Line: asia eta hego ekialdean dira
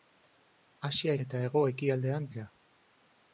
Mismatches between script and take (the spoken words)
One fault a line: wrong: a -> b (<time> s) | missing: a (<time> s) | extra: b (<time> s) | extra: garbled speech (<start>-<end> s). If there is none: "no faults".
no faults